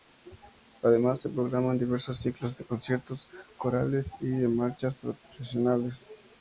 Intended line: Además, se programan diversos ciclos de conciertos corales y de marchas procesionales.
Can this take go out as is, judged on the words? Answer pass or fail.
pass